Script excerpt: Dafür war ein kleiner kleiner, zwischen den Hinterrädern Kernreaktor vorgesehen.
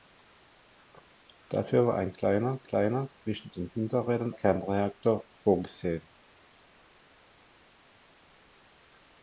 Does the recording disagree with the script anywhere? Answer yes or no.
no